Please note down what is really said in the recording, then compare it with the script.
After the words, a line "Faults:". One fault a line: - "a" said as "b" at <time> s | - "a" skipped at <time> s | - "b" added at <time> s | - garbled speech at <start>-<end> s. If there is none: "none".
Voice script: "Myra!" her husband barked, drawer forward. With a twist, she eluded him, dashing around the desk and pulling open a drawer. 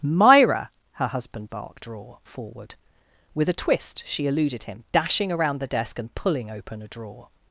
"Myra!" her husband barked, drawer forward. With a twist, she eluded him, dashing around the desk and pulling open a drawer.
Faults:
none